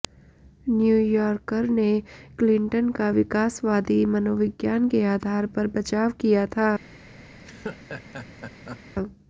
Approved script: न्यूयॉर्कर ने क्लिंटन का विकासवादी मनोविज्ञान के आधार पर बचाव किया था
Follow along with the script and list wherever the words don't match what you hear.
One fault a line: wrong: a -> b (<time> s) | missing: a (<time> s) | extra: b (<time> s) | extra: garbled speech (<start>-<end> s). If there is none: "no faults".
no faults